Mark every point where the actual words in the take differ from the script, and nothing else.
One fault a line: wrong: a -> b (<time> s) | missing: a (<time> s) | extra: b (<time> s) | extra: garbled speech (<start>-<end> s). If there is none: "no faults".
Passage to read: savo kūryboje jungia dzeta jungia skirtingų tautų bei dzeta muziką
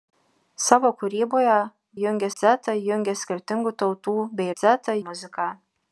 no faults